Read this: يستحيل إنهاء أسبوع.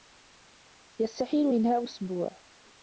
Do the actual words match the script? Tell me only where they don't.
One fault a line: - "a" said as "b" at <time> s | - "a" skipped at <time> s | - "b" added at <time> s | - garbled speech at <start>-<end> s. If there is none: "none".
none